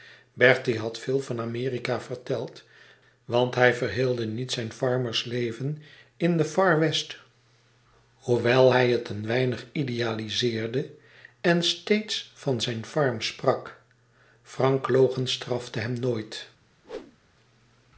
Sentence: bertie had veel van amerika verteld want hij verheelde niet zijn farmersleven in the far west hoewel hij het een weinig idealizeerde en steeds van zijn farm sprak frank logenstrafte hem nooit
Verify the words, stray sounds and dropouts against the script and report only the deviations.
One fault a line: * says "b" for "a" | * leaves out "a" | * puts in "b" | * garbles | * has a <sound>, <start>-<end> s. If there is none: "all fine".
* has a whoosh, 16.8-17.2 s